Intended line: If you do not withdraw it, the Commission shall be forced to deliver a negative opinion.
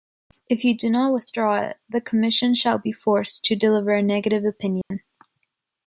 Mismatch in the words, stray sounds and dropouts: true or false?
true